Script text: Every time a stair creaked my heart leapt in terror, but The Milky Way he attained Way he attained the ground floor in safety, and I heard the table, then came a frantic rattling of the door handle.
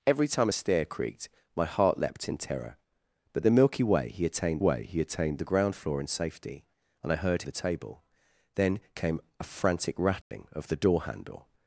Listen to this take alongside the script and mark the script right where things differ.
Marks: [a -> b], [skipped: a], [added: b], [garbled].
Every time a stair creaked my heart leapt in terror, but The Milky Way he attained Way he attained the ground floor in safety, and I heard the table, then came a frantic rattling of the door handle.